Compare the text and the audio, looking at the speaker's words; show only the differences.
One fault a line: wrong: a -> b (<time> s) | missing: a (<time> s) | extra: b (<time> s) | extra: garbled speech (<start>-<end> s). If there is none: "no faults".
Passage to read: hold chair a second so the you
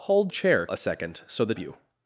no faults